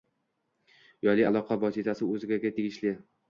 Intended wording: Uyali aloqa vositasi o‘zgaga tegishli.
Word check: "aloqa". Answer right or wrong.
right